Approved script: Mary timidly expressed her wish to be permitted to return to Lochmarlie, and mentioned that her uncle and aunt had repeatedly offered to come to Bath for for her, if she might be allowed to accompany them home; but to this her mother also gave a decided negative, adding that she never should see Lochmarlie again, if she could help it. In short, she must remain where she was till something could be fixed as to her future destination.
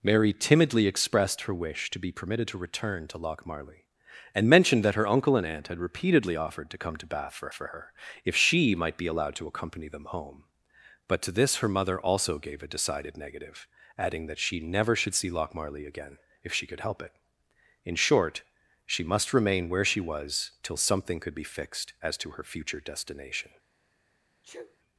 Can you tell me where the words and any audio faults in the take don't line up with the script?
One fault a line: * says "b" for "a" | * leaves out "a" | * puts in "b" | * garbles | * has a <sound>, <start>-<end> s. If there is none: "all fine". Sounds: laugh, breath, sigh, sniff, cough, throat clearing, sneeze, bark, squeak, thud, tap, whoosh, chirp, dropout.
* has a sneeze, 24.4-24.8 s